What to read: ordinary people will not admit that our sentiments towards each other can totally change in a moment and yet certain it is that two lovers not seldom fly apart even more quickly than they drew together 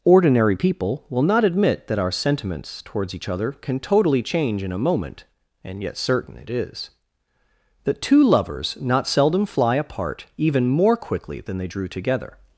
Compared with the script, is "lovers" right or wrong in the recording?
right